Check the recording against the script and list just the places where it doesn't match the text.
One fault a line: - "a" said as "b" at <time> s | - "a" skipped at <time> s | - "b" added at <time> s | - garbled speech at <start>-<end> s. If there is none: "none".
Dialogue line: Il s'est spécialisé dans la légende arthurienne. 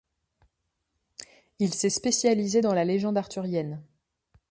none